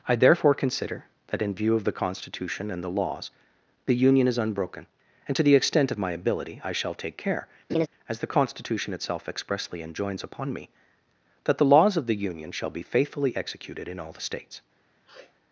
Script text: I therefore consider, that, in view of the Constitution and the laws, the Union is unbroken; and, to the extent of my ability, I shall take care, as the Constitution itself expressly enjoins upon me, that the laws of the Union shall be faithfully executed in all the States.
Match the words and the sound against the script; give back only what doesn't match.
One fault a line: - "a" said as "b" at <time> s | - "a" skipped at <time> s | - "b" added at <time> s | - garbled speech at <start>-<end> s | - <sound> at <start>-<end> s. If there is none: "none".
- laugh at 7.7-7.9 s
- sniff at 15.1-15.4 s